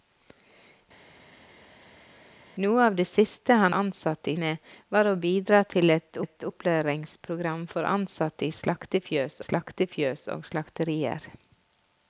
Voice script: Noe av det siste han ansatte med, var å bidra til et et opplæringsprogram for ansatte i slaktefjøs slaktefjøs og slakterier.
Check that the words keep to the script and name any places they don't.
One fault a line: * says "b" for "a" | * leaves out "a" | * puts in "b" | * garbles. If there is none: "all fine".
all fine